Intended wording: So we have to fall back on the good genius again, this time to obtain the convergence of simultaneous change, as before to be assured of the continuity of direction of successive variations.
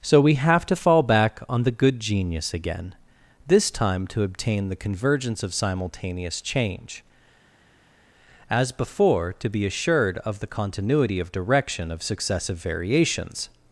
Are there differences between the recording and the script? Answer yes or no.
no